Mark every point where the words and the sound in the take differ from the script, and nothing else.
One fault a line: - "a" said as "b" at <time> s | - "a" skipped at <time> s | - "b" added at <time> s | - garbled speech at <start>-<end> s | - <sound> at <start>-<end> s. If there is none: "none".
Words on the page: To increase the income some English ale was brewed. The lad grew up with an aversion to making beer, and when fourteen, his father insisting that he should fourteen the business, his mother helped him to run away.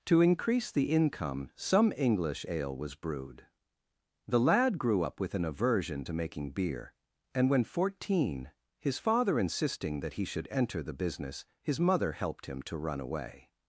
- "fourteen" said as "enter" at 10.5 s